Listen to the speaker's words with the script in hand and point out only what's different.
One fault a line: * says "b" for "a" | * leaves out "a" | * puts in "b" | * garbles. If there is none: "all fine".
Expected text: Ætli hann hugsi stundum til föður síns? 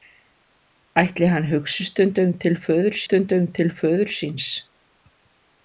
* puts in "stundum til föður"